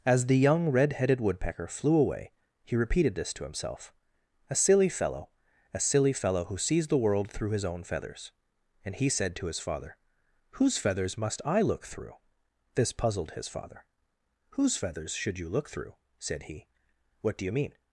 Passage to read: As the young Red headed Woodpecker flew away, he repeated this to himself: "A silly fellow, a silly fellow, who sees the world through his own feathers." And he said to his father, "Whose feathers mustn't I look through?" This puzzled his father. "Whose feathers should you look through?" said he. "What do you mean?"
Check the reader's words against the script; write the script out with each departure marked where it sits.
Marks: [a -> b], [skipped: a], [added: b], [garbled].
As the young Red headed Woodpecker flew away, he repeated this to himself: "A silly fellow, a silly fellow, who sees the world through his own feathers." And he said to his father, "Whose feathers [mustn't -> must] I look through?" This puzzled his father. "Whose feathers should you look through?" said he. "What do you mean?"